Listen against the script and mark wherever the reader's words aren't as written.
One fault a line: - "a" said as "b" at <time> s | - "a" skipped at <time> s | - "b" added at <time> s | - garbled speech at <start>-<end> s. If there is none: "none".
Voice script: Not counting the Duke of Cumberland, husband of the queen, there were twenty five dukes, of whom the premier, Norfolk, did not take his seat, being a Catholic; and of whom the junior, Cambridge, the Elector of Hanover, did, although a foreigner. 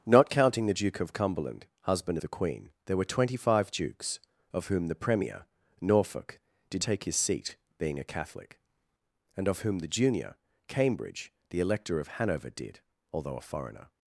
- "of" skipped at 2.2 s
- "not" skipped at 6.8 s